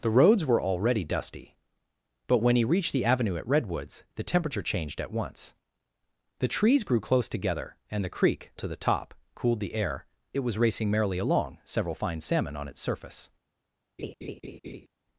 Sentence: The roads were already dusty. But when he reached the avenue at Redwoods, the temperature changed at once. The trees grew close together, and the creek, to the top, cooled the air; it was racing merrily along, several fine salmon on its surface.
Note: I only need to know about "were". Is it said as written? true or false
true